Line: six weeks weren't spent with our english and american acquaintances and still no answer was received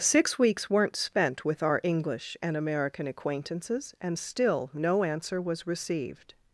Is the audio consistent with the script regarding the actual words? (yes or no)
yes